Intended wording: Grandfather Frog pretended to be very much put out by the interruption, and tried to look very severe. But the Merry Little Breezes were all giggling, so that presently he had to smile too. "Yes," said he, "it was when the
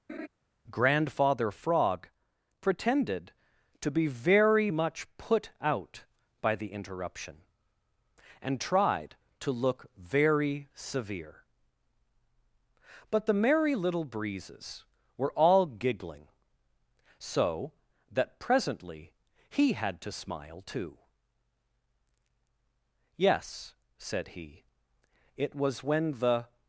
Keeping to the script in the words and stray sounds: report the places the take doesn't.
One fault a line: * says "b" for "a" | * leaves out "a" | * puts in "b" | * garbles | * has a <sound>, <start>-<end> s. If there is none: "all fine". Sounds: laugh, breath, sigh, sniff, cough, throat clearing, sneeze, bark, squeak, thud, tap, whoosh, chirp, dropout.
* has a laugh, 0.1-0.3 s